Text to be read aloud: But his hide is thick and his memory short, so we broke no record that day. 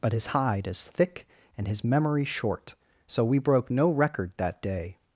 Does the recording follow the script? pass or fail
pass